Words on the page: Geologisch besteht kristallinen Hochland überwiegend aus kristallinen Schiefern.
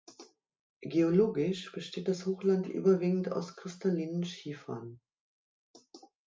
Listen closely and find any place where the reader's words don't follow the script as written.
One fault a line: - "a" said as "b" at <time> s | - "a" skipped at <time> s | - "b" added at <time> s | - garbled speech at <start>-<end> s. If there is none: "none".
- "kristallinen" said as "das" at 2.1 s